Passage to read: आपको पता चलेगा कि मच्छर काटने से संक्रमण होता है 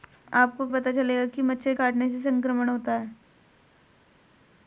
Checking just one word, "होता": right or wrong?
right